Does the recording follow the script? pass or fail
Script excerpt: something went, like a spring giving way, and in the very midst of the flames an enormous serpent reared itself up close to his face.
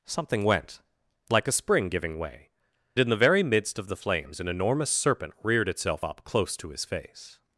fail